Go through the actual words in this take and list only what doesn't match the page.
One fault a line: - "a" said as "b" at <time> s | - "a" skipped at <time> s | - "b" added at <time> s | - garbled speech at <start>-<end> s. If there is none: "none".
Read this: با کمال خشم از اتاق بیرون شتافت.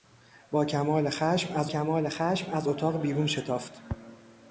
- "کمال خشم از" added at 1.7 s